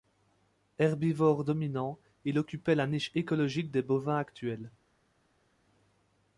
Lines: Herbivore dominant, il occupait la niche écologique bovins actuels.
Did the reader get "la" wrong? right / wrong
right